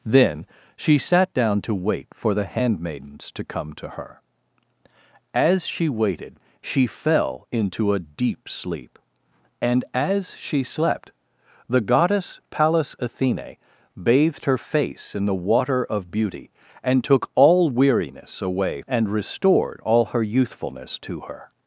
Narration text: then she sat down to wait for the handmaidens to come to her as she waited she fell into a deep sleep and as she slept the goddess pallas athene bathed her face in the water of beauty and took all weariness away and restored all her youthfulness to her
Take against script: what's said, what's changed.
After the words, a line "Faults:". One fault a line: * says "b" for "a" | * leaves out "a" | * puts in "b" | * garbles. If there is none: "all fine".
then she sat down to wait for the handmaidens to come to her as she waited she fell into a deep sleep and as she slept the goddess pallas athene bathed her face in the water of beauty and took all weariness away and restored all her youthfulness to her
Faults:
all fine